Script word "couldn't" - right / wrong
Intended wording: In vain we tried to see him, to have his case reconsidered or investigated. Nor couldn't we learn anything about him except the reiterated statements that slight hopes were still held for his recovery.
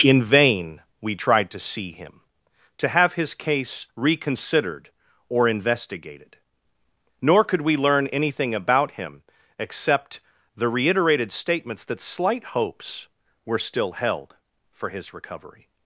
wrong